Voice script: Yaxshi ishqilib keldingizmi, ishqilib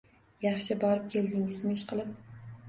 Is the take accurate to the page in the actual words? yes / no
no